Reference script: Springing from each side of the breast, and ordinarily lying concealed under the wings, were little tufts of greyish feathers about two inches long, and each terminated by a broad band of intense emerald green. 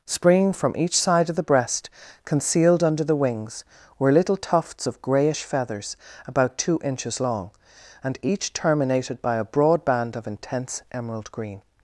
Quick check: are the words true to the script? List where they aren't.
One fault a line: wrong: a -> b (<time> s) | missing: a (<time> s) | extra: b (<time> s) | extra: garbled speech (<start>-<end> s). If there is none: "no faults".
missing: and ordinarily lying (1.9 s)